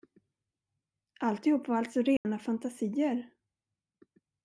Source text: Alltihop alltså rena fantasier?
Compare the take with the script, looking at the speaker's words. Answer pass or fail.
fail